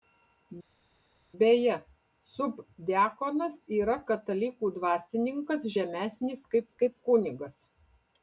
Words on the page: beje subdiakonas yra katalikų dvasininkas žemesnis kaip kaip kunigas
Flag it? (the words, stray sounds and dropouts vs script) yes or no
no